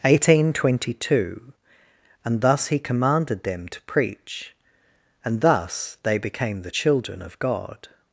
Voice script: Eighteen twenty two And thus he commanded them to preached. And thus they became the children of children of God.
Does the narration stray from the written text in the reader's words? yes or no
yes